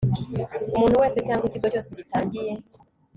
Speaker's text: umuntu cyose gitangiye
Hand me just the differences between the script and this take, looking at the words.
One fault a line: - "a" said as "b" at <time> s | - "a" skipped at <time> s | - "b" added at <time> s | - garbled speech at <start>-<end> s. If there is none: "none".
- "wese cyangwa ikigo" added at 1.0 s